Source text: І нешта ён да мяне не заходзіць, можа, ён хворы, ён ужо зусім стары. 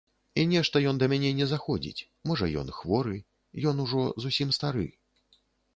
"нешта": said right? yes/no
yes